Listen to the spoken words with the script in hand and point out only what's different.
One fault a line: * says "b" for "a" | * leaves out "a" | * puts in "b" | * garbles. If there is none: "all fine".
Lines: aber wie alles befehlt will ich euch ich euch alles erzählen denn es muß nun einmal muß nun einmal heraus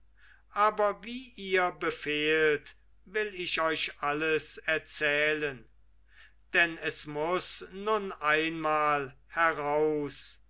* says "ihr" for "alles"
* leaves out "ich euch"
* leaves out "muß nun einmal"